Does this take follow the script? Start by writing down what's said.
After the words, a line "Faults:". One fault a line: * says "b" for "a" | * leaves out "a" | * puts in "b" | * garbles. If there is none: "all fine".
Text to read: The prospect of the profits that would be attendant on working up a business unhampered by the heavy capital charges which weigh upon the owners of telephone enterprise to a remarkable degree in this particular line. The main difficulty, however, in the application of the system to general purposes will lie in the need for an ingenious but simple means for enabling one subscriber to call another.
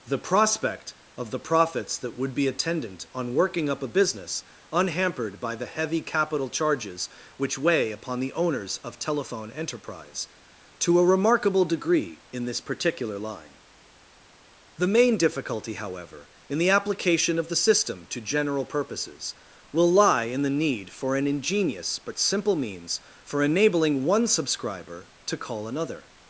The prospect of the profits that would be attendant on working up a business unhampered by the heavy capital charges which weigh upon the owners of telephone enterprise to a remarkable degree in this particular line. The main difficulty, however, in the application of the system to general purposes will lie in the need for an ingenious but simple means for enabling one subscriber to call another.
Faults:
all fine